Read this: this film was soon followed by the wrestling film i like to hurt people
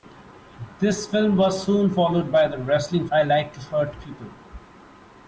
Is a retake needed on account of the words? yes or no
yes